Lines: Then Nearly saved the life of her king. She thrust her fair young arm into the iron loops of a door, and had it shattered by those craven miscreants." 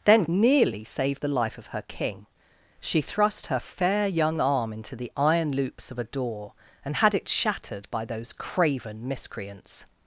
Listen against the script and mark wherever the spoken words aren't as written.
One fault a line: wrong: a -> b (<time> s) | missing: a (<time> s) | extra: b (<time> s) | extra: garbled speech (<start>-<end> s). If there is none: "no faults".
no faults